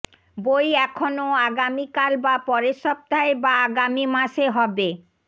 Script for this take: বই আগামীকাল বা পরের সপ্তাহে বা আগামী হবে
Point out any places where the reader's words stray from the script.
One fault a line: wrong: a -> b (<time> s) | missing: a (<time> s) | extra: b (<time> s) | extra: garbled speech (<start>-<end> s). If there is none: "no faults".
extra: এখনও (0.8 s)
extra: মাসে (4.2 s)